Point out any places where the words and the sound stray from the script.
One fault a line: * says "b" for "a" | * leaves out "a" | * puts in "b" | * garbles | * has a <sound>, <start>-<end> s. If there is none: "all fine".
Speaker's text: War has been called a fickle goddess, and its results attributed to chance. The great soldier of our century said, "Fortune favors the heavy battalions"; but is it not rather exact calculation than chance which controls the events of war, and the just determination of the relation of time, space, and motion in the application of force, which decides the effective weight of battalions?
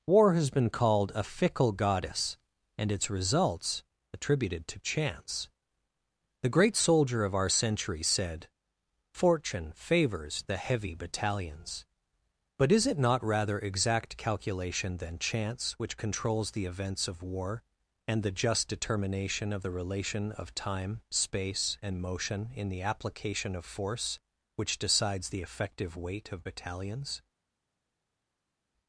all fine